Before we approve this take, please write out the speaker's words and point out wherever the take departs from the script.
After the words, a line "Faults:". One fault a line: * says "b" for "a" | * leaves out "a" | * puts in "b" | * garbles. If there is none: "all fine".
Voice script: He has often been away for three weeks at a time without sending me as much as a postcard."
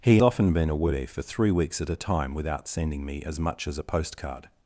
He often been away for three weeks at a time without sending me as much as a postcard."
Faults:
* leaves out "has"